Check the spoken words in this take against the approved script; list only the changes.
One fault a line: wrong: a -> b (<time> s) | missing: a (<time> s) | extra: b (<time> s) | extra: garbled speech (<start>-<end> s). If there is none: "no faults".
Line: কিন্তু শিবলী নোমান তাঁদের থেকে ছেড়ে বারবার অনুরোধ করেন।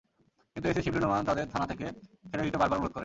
extra: এসি (0.7 s)
extra: থানা (1.5 s)
extra: দিতে (2.5 s)